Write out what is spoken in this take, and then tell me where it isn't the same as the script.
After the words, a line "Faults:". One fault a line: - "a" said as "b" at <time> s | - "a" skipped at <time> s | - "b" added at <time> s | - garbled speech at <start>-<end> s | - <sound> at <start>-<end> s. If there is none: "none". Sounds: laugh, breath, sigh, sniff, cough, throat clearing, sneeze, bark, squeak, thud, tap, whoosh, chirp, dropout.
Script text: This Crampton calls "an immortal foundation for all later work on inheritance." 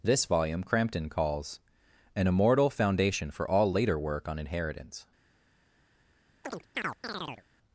This volume Crampton calls "an immortal foundation for all later work on inheritance."
Faults:
- "volume" added at 0.2 s
- chirp at 6.4-7.4 s